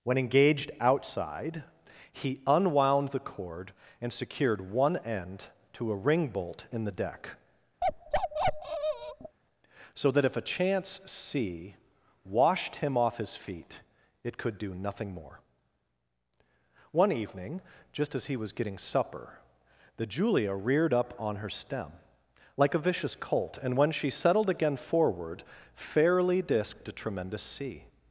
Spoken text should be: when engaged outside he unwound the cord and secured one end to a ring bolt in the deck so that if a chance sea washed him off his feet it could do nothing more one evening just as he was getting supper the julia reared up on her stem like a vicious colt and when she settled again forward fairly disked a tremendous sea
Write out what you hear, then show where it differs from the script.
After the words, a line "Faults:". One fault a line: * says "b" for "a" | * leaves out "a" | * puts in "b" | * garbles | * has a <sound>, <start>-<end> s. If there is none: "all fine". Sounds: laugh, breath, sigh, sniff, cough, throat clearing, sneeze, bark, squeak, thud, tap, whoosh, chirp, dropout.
when engaged outside he unwound the cord and secured one end to a ring bolt in the deck so that if a chance sea washed him off his feet it could do nothing more one evening just as he was getting supper the julia reared up on her stem like a vicious colt and when she settled again forward fairly disked a tremendous sea
Faults:
* has a bark, 7.8-9.4 s